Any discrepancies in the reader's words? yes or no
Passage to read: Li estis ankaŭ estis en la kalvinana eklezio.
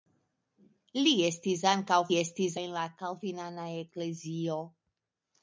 no